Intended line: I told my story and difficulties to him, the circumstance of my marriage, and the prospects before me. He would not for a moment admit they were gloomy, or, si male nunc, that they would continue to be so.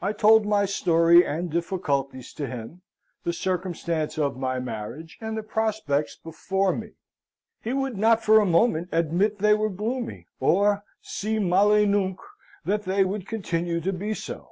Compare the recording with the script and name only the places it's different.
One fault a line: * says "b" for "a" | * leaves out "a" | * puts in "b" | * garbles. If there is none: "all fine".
all fine